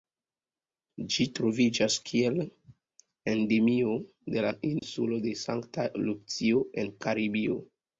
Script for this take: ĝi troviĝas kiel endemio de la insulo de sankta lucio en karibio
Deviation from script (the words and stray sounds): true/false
true